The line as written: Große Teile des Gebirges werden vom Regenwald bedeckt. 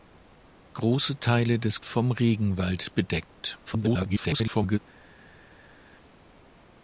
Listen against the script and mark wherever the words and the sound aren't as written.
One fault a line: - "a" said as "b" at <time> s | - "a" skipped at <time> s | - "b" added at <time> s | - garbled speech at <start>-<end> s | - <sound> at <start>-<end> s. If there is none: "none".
- "Gebirges werden" skipped at 1.8 s
- garbled speech at 3.7-4.8 s